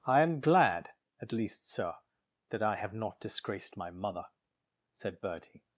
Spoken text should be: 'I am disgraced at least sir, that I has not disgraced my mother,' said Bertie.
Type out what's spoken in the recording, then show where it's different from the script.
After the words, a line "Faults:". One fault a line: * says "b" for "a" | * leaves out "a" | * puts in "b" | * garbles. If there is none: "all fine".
'I am glad at least sir, that I have not disgraced my mother,' said Bertie.
Faults:
* says "glad" for "disgraced"
* says "have" for "has"